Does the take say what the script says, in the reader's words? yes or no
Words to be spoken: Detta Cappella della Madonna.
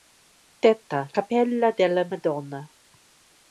yes